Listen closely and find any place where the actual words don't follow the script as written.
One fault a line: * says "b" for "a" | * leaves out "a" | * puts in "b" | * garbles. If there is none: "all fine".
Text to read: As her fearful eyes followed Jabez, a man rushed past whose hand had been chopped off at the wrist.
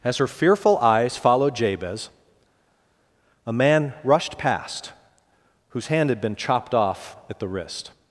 all fine